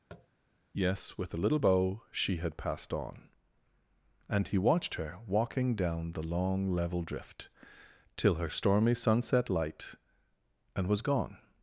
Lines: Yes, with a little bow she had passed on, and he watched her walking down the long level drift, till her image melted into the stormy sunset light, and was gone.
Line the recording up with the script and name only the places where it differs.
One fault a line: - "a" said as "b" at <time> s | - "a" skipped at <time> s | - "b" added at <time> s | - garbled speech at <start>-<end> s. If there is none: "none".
- "image melted into the" skipped at 8.5 s